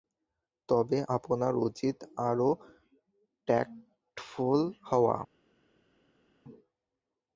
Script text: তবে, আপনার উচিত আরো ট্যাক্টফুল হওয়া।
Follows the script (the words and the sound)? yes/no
yes